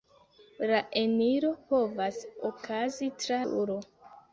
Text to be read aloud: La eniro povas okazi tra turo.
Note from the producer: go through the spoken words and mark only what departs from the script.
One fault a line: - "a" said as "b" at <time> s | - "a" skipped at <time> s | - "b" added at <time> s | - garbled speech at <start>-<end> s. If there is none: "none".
none